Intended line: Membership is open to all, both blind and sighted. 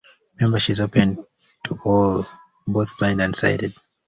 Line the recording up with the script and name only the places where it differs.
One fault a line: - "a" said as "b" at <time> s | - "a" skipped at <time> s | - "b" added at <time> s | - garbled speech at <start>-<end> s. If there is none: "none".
none